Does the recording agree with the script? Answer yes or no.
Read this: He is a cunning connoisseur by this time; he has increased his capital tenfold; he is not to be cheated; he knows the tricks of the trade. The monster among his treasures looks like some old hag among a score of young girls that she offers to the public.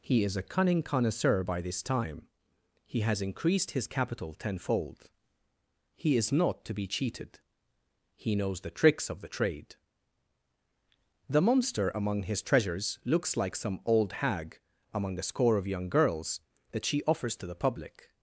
yes